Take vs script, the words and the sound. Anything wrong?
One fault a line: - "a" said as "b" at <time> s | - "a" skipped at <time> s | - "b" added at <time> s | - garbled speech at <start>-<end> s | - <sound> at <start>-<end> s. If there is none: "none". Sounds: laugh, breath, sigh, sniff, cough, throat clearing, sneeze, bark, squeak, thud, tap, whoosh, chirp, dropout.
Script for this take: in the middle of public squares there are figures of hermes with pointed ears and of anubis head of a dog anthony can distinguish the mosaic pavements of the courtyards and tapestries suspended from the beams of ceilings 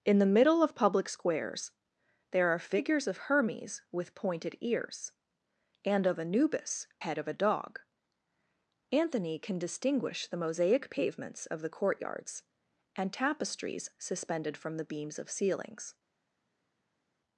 none